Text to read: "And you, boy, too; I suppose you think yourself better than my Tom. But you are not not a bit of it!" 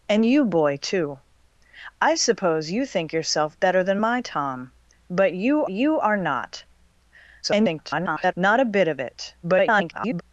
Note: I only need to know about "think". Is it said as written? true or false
true